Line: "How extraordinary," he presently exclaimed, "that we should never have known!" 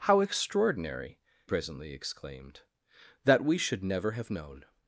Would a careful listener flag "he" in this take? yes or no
yes